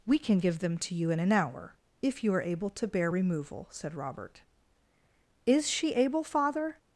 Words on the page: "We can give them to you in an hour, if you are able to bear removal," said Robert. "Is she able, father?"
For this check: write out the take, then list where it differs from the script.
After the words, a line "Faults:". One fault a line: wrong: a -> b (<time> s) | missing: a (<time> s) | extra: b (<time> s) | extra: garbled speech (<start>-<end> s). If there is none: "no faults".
"We can give them to you in an hour, if you are able to bear removal," said Robert. "Is she able, father?"
Faults:
no faults